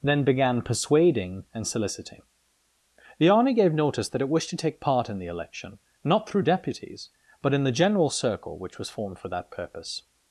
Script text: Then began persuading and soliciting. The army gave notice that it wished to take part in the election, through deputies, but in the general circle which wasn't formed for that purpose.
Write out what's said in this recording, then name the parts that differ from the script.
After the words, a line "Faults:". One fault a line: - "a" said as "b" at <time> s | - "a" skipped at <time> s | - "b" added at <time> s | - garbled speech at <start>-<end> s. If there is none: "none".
Then began persuading and soliciting. The army gave notice that it wished to take part in the election, not through deputies, but in the general circle which was formed for that purpose.
Faults:
- "not" added at 6.0 s
- "wasn't" said as "was" at 8.8 s